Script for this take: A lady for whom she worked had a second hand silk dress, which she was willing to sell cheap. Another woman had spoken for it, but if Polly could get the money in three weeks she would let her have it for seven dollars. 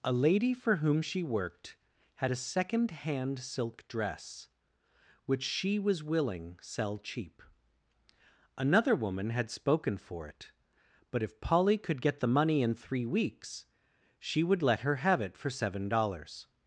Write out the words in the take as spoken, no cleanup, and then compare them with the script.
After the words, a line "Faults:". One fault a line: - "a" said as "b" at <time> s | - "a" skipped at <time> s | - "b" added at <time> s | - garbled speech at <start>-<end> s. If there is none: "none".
A lady for whom she worked had a second hand silk dress, which she was willing sell cheap. Another woman had spoken for it, but if Polly could get the money in three weeks she would let her have it for seven dollars.
Faults:
- "to" skipped at 6.6 s